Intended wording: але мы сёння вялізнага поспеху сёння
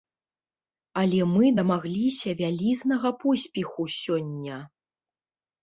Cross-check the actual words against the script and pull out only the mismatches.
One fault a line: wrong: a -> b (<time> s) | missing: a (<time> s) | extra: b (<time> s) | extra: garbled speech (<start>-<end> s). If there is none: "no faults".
wrong: сёння -> дамагліся (1.6 s)